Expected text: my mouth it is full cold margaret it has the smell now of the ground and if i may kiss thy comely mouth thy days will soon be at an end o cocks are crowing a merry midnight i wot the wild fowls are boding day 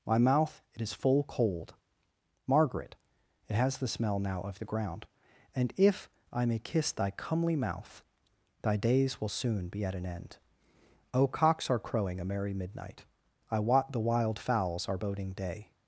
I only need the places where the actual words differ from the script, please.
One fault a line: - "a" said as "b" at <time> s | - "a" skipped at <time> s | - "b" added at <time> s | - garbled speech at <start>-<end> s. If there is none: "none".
none